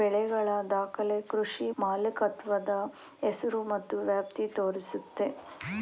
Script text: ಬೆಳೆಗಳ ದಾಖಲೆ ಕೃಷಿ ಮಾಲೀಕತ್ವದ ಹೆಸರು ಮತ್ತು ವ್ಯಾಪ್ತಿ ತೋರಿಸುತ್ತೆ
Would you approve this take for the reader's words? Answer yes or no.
yes